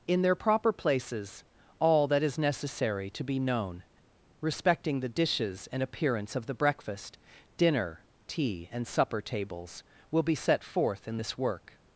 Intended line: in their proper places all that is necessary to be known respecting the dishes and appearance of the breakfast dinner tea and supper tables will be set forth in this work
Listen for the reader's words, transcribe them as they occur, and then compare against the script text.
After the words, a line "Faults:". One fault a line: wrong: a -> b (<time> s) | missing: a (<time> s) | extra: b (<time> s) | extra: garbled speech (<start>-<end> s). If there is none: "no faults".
in their proper places all that is necessary to be known respecting the dishes and appearance of the breakfast dinner tea and supper tables will be set forth in this work
Faults:
no faults